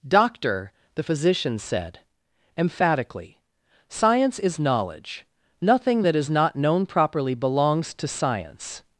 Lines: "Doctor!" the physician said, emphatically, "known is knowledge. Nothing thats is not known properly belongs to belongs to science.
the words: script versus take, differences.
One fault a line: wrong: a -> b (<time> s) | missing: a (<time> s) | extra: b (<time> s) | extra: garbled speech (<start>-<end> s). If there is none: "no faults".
wrong: known -> science (3.9 s)
wrong: thats -> that (6.0 s)
missing: belongs to (8.1 s)